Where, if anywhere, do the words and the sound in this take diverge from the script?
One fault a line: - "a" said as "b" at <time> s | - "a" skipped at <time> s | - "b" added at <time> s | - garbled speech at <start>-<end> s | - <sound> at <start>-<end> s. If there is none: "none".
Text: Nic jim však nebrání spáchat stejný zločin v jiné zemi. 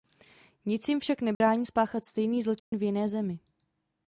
- dropout at 1.3-1.4 s
- dropout at 2.6-2.7 s